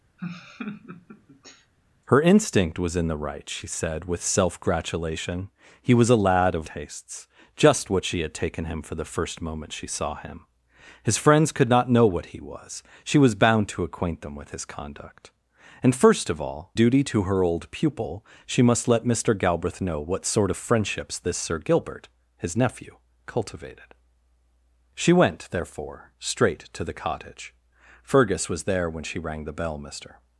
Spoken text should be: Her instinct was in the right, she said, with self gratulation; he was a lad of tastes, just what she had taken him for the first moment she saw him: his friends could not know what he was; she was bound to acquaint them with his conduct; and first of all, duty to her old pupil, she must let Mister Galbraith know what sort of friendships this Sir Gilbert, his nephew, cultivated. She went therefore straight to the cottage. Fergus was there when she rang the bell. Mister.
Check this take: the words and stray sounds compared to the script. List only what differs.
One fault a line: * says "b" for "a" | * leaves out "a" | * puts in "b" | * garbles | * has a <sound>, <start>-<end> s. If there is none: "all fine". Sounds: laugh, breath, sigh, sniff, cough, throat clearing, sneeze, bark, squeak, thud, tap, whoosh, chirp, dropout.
* has a laugh, 0.2-1.7 s